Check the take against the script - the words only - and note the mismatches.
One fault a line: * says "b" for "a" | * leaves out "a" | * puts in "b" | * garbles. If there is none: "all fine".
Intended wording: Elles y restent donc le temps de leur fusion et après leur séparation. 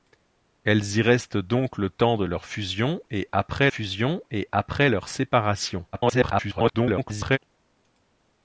* puts in "fusion et après"
* garbles